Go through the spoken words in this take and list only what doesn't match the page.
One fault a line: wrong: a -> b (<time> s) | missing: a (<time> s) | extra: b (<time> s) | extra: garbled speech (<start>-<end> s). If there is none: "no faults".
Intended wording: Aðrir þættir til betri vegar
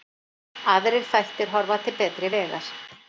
extra: horfa (1.6 s)